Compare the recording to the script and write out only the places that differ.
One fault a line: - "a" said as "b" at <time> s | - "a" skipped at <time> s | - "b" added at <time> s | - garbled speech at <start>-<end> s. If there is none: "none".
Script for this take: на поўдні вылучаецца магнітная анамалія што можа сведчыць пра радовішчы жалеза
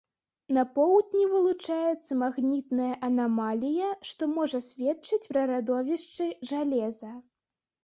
none